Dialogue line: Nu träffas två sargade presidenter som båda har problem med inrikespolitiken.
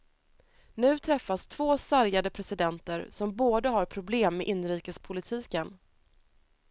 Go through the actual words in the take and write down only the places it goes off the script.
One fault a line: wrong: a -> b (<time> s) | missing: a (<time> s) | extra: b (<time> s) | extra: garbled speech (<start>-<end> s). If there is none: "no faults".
no faults